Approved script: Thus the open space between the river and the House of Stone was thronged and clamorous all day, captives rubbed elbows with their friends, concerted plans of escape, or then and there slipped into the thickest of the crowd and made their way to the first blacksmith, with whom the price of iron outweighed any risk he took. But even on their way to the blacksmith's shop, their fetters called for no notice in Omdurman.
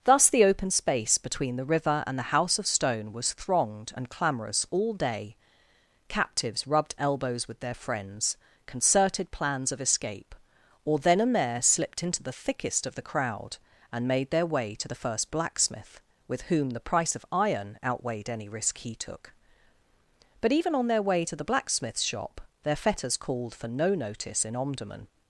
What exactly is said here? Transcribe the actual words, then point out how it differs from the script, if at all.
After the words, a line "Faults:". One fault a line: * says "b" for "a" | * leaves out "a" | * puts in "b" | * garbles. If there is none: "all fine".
Thus the open space between the river and the House of Stone was thronged and clamorous all day, captives rubbed elbows with their friends, concerted plans of escape, or then and there slipped into the thickest of the crowd and made their way to the first blacksmith, with whom the price of iron outweighed any risk he took. But even on their way to the blacksmith's shop, their fetters called for no notice in Omdurman.
Faults:
all fine